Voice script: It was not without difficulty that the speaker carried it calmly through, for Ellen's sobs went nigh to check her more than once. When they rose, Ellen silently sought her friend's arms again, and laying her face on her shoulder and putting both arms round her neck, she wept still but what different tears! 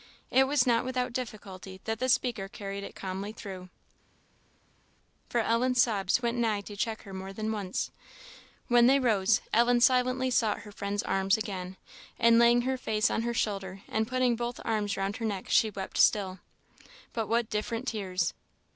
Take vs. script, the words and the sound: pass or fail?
pass